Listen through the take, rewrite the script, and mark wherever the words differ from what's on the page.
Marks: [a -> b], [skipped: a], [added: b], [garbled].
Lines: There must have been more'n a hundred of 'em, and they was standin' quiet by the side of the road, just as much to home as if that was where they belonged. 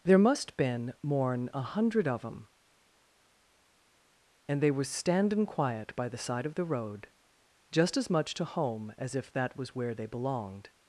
There must [skipped: have] been more'n a hundred of 'em, and they was standin' quiet by the side of the road, just as much to home as if that was where they belonged.